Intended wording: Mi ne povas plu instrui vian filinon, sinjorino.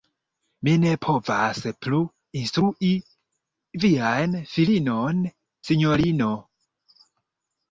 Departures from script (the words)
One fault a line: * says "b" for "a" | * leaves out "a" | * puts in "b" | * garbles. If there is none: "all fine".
all fine